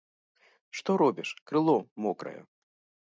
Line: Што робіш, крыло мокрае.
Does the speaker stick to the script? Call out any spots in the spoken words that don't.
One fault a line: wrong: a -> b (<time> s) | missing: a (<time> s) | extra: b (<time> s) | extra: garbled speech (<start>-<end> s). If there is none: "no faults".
no faults